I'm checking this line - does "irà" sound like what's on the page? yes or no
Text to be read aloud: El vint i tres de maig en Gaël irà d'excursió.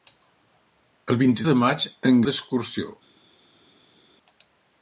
no